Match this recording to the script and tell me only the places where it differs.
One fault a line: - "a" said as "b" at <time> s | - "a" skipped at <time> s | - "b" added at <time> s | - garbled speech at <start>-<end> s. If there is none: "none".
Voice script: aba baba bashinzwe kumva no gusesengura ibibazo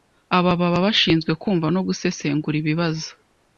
none